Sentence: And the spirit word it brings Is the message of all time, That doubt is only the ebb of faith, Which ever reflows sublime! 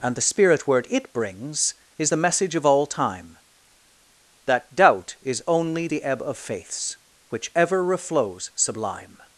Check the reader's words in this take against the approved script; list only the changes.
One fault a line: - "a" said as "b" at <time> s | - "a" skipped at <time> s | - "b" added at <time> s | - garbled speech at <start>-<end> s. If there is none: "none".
- "faith" said as "faiths" at 6.4 s